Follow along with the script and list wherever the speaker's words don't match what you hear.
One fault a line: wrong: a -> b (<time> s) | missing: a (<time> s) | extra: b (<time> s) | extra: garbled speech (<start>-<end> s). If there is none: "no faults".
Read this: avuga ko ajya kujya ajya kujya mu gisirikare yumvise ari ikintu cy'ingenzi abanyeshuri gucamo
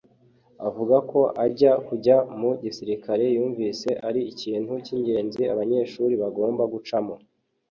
missing: ajya kujya (2.2 s)
extra: bagomba (6.2 s)